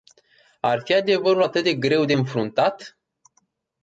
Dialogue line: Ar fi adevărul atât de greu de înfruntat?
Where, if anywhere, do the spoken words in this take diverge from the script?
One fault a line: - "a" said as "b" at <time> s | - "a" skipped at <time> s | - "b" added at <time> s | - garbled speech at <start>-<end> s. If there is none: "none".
none